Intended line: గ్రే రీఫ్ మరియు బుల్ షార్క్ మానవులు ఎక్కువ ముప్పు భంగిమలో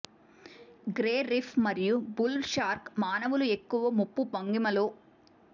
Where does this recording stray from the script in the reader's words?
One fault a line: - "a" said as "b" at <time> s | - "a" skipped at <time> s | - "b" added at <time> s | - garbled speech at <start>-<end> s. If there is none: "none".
none